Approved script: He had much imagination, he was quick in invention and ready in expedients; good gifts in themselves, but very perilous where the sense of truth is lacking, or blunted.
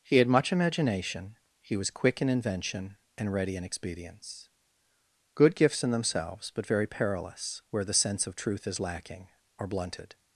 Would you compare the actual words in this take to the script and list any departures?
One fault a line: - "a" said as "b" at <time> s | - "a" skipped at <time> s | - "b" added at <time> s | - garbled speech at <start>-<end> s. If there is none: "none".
none